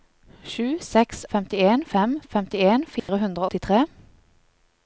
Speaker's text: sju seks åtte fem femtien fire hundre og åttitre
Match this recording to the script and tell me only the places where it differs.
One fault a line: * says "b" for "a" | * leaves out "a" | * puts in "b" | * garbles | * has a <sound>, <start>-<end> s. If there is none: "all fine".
* says "femtien" for "åtte"
* has a dropout, 3.0-3.1 s
* leaves out "og"